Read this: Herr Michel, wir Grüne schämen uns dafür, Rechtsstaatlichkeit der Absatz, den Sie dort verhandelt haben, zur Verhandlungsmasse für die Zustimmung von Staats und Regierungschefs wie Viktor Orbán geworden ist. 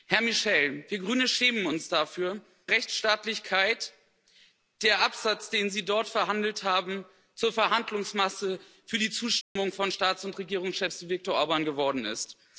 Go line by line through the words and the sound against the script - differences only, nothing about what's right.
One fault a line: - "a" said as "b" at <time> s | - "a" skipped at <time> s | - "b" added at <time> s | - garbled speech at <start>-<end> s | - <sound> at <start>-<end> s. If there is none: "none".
- dropout at 9.4-9.6 s